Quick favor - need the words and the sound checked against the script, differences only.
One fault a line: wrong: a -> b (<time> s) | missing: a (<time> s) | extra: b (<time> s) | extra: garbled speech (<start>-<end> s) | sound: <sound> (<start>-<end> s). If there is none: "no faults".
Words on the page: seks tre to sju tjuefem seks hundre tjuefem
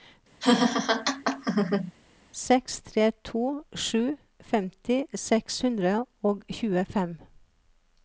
sound: laugh (0.4-1.9 s)
wrong: tjuefem -> femti (4.5 s)
extra: og (6.3 s)